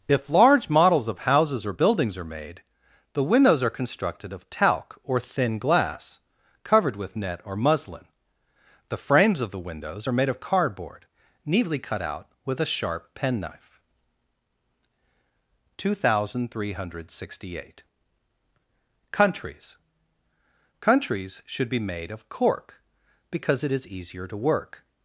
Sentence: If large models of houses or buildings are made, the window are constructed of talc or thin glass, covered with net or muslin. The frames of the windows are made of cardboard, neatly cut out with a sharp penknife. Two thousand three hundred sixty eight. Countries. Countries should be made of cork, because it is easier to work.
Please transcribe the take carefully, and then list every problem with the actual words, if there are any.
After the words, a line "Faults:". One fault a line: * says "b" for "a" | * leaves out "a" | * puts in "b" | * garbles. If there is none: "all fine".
If large models of houses or buildings are made, the windows are constructed of talc or thin glass, covered with net or muslin. The frames of the windows are made of cardboard, neatly cut out with a sharp penknife. Two thousand three hundred sixty eight. Countries. Countries should be made of cork, because it is easier to work.
Faults:
* says "windows" for "window"